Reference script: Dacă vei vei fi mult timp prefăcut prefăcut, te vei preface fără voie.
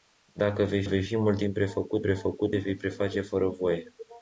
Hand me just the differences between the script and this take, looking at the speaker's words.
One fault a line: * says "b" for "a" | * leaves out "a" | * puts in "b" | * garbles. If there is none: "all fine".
all fine